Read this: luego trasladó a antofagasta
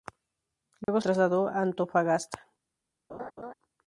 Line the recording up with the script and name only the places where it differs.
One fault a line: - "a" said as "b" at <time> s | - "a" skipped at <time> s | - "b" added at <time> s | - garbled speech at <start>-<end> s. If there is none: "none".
none